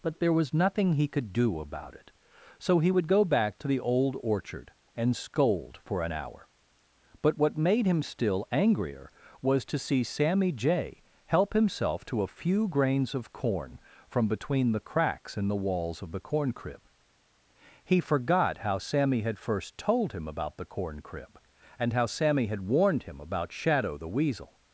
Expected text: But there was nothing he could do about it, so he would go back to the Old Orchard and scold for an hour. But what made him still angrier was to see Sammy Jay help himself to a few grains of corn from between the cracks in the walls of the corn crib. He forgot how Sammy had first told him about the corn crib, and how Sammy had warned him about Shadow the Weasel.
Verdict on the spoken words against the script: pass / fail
pass